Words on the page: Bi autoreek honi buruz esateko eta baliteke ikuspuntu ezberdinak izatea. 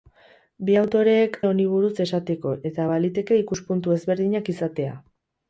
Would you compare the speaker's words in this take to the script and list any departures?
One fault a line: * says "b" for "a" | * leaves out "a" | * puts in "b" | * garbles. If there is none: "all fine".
all fine